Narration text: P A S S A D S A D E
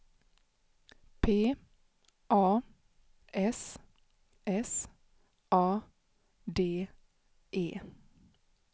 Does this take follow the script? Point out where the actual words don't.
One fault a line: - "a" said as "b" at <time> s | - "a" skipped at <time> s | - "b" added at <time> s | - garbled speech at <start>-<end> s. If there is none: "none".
- "S A D" skipped at 6.9 s